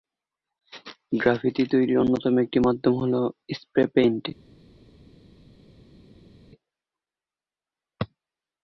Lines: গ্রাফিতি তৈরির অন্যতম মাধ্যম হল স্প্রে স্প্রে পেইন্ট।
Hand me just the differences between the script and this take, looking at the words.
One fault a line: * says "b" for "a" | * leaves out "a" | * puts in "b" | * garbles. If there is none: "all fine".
* puts in "একটি"
* leaves out "স্প্রে"